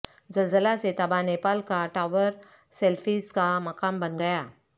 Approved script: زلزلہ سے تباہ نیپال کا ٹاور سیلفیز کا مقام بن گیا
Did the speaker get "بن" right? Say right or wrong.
right